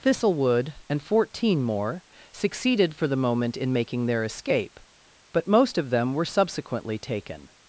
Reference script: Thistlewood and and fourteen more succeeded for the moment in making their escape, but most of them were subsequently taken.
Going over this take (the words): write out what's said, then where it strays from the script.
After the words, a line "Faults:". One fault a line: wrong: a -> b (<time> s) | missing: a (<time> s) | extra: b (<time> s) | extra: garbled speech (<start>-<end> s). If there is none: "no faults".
Thistlewood and fourteen more succeeded for the moment in making their escape, but most of them were subsequently taken.
Faults:
missing: and (1.0 s)